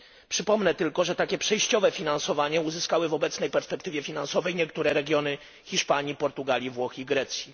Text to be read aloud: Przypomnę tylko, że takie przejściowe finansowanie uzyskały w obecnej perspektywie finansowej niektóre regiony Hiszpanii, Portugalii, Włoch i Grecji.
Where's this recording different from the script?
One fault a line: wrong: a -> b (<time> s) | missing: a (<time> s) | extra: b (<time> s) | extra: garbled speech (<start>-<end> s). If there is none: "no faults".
no faults